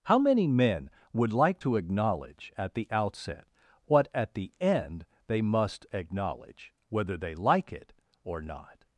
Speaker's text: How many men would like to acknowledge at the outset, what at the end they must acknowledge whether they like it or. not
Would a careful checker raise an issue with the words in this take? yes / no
no